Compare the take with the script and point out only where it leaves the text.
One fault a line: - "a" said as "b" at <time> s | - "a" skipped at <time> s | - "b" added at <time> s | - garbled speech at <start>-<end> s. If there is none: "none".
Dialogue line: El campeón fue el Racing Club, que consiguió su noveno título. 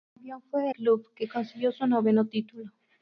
- "el Racing" skipped at 0.7 s